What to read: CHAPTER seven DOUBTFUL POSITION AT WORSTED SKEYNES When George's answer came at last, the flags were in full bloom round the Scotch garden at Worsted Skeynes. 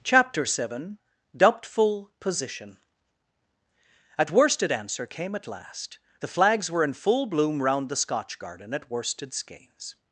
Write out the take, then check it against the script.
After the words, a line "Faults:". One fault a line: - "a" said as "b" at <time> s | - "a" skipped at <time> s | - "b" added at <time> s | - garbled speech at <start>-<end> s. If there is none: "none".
CHAPTER seven DOUBTFUL POSITION AT WORSTED answer came at last, the flags were in full bloom round the Scotch garden at Worsted Skeynes.
Faults:
- "SKEYNES When George's" skipped at 4.7 s